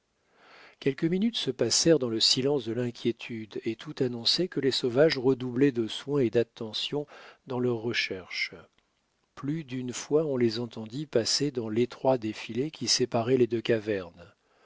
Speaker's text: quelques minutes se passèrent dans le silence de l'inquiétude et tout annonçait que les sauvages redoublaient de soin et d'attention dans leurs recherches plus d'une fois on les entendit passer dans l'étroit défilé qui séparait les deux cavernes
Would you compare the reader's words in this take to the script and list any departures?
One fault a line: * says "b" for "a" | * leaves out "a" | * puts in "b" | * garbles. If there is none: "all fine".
all fine